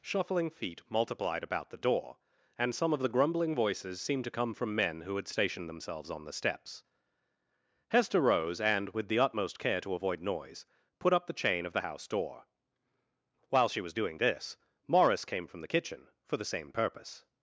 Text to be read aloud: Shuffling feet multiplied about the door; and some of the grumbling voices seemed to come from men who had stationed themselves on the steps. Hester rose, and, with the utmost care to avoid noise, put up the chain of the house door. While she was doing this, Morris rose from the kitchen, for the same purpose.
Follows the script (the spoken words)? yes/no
no